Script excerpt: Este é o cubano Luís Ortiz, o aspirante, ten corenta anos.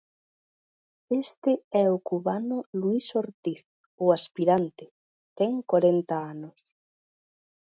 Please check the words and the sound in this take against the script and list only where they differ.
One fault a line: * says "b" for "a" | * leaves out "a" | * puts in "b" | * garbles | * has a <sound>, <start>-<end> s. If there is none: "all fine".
all fine